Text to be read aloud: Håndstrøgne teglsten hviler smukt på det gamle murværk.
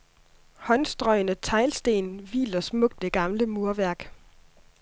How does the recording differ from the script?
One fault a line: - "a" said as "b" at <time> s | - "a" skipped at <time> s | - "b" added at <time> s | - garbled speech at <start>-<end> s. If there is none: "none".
- "på" skipped at 3.0 s